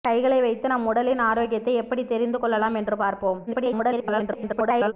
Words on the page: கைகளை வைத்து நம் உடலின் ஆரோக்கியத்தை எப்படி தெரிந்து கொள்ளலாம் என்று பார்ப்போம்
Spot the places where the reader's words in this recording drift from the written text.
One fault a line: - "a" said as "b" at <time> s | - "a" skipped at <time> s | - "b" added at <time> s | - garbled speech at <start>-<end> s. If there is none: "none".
- garbled speech at 3.5-4.9 s